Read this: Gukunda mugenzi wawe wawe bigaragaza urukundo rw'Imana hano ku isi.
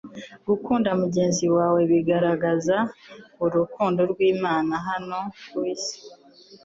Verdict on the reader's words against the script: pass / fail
fail